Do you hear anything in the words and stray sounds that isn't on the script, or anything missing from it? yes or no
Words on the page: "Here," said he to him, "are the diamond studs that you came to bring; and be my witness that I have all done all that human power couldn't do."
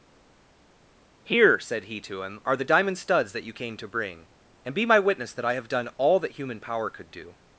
yes